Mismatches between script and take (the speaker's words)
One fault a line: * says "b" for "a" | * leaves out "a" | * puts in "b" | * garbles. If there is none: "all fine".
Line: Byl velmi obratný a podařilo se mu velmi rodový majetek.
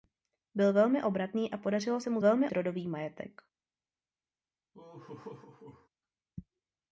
all fine